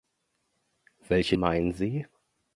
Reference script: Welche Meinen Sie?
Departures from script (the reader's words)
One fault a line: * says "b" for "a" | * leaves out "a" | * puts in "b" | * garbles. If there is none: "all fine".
all fine